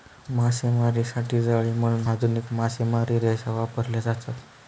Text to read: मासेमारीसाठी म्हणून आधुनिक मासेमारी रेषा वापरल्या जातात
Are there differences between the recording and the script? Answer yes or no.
yes